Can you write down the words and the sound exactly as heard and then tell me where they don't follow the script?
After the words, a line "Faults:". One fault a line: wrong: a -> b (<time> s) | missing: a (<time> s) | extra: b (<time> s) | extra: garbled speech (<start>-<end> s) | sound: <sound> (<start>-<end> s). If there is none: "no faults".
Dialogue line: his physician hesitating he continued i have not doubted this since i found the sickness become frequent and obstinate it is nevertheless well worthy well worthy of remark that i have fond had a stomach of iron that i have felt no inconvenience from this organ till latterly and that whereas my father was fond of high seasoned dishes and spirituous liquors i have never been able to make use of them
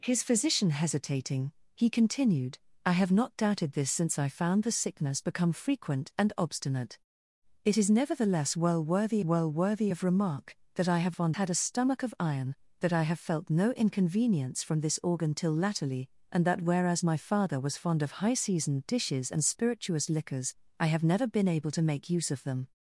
his physician hesitating he continued i have not doubted this since i found the sickness become frequent and obstinate it is nevertheless well worthy well worthy of remark that i have fond had a stomach of iron that i have felt no inconvenience from this organ till latterly and that whereas my father was fond of high seasoned dishes and spirituous liquors i have never been able to make use of them
Faults:
no faults